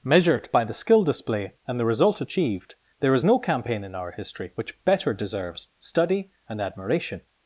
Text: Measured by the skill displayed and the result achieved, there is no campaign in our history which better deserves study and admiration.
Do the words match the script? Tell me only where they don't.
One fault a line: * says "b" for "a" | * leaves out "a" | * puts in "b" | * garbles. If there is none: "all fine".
* says "display" for "displayed"